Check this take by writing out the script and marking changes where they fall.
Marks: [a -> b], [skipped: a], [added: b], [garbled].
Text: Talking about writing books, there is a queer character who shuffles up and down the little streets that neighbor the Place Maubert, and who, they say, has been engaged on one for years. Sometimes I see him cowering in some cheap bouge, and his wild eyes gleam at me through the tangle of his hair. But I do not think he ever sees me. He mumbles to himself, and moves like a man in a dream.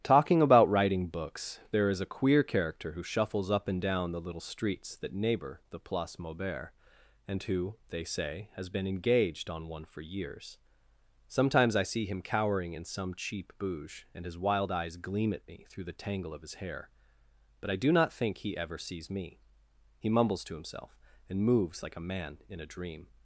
Talking about writing books, there is a queer character who shuffles up and down the little streets that neighbor the Place Maubert, and who, they say, has been engaged on one for years. Sometimes I see him cowering in some cheap bouge, and his wild eyes gleam at me through the tangle of his hair. But I do not think he ever sees me. He mumbles to himself, and moves like a man in a dream.